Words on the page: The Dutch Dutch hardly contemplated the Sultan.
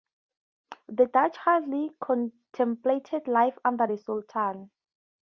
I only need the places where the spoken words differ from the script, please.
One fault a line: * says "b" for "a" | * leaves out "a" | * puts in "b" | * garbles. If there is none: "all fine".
* leaves out "Dutch"
* puts in "life under"